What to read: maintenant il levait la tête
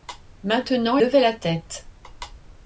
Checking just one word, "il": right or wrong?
wrong